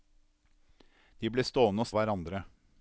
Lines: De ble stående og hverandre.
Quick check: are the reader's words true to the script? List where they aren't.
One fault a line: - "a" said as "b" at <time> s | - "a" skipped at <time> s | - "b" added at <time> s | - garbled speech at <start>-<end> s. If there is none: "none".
none